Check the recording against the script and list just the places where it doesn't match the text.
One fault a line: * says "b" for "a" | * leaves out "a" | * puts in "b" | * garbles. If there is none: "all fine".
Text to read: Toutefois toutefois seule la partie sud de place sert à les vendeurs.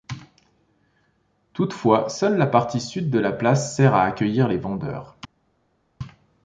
* leaves out "toutefois"
* puts in "la"
* puts in "accueillir"